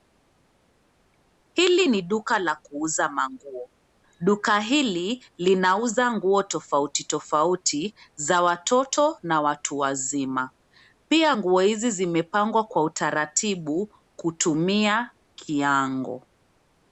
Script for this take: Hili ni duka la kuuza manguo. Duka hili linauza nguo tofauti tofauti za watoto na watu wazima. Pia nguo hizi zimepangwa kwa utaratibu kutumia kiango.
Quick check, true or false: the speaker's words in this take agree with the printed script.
true